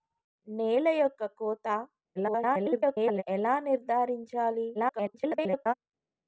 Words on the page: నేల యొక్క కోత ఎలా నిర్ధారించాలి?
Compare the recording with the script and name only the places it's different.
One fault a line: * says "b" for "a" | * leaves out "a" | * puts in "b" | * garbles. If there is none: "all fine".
* garbles
* garbles